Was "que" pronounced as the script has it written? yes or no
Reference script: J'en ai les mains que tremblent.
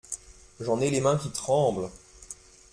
no